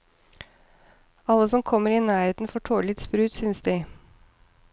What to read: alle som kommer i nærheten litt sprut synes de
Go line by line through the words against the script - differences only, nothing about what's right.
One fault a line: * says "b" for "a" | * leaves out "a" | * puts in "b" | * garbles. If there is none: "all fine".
* puts in "får tåle"